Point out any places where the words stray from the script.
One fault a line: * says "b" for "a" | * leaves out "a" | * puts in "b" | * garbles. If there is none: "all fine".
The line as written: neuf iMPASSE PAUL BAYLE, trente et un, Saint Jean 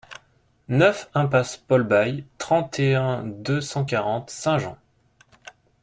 * puts in "deux cent quarante"